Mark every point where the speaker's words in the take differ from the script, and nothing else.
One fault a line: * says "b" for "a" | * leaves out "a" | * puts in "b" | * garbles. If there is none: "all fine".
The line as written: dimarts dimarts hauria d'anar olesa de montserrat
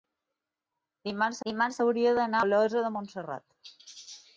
all fine